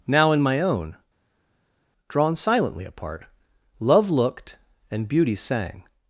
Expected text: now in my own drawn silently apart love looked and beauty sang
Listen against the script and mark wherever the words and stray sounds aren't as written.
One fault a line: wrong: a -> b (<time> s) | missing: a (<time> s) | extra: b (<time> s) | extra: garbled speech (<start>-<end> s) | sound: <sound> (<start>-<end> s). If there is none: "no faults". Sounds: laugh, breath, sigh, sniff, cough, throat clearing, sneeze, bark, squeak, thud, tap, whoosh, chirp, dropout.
no faults